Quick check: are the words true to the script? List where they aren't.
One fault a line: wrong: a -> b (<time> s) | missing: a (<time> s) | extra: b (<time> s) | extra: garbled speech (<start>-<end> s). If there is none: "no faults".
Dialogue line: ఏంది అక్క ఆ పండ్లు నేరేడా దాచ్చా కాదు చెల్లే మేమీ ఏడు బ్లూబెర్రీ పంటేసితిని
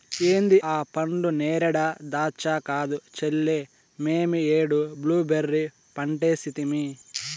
missing: అక్క (0.6 s)